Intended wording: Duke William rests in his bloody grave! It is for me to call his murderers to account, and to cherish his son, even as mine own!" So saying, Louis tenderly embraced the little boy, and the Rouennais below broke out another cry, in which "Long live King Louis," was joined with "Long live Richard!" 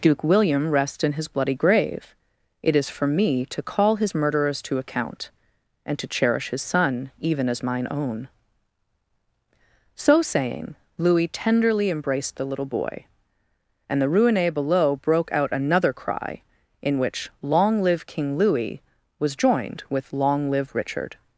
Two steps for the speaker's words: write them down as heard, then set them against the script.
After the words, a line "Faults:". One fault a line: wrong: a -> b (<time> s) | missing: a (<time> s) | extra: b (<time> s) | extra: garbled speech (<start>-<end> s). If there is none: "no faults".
Duke William rests in his bloody grave! It is for me to call his murderers to account, and to cherish his son, even as mine own!" So saying, Louis tenderly embraced the little boy, and the Rouennais below broke out another cry, in which "Long live King Louis," was joined with "Long live Richard!"
Faults:
no faults